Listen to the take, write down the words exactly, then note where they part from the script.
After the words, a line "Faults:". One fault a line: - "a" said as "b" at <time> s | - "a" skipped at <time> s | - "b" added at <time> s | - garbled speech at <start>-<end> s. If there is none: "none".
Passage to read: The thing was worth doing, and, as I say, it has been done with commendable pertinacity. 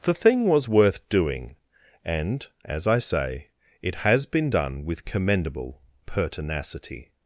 The thing was worth doing, and, as I say, it has been done with commendable pertinacity.
Faults:
none